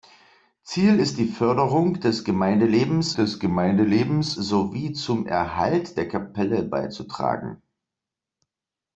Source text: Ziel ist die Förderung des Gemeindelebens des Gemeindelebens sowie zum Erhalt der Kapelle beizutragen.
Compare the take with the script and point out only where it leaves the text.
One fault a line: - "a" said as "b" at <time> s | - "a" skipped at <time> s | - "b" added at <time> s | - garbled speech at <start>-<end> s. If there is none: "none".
none